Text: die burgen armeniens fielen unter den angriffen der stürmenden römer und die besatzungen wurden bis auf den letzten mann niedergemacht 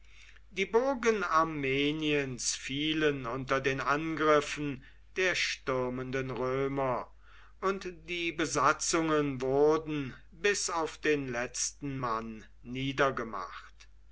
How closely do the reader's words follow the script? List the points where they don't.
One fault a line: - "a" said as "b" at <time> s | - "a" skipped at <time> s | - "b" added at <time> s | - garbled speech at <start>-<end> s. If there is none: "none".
none